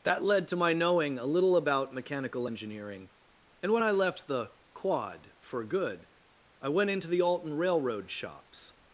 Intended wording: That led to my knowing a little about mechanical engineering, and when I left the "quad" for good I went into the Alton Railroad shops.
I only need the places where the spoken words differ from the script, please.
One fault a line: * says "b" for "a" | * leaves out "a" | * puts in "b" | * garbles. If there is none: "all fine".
all fine